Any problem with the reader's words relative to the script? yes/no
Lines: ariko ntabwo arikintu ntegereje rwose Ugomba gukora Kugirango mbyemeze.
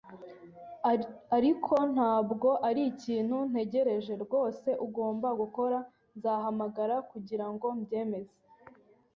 yes